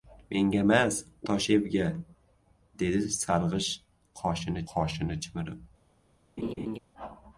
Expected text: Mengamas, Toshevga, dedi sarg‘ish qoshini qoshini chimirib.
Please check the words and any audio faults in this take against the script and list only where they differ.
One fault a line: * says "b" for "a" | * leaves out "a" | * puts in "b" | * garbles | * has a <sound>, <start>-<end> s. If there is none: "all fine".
* has a laugh, 6.4-6.8 s